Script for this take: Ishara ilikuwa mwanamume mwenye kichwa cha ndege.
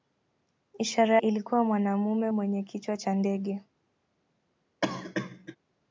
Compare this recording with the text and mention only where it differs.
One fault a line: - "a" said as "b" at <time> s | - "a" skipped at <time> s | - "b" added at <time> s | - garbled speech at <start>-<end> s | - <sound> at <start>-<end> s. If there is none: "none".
- cough at 4.8-5.6 s